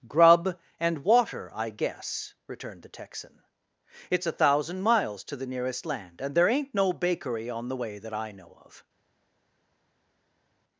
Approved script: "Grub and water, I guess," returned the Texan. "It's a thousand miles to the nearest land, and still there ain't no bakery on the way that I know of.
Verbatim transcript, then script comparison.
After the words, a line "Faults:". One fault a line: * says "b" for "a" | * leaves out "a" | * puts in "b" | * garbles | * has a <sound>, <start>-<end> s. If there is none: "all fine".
"Grub and water, I guess," returned the Texan. "It's a thousand miles to the nearest land, and there ain't no bakery on the way that I know of.
Faults:
* leaves out "still"